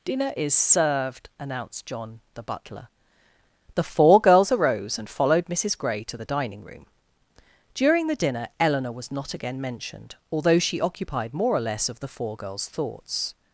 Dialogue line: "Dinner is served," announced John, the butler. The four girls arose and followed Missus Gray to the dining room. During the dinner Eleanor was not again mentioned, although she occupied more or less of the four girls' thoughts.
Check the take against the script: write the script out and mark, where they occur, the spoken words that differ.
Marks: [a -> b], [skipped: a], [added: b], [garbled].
"Dinner is served," announced John, the butler. The four girls arose and followed Missus Gray to the dining room. During the dinner Eleanor was not again mentioned, although she occupied more or less of the four girls' thoughts.